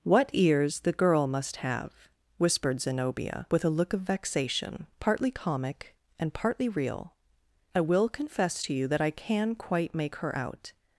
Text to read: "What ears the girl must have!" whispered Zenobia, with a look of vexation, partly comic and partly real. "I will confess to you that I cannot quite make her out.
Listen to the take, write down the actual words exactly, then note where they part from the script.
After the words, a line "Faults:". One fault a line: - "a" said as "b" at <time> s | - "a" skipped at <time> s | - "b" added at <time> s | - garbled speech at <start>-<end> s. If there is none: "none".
"What ears the girl must have!" whispered Zenobia, with a look of vexation, partly comic and partly real. "I will confess to you that I can quite make her out.
Faults:
- "cannot" said as "can" at 9.1 s